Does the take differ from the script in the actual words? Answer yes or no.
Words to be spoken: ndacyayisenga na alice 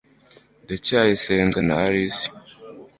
no